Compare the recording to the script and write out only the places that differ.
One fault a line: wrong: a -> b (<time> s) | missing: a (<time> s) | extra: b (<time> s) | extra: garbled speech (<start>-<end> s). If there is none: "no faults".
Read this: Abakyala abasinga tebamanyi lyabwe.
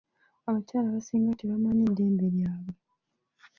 extra: ddembe (1.9 s)